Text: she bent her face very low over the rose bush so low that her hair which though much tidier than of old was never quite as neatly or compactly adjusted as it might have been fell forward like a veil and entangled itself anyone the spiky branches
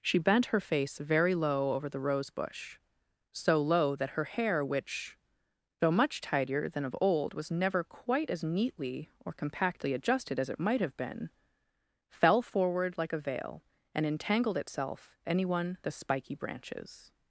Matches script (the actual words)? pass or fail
pass